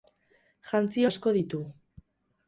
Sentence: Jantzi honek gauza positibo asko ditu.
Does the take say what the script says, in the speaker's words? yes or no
no